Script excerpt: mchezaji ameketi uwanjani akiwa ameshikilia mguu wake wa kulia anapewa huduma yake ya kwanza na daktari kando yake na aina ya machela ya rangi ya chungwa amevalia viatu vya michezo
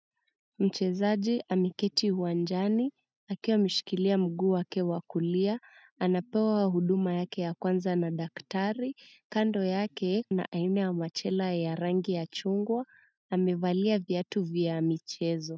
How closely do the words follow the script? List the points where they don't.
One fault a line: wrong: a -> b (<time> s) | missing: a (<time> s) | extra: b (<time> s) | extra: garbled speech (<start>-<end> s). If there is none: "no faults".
no faults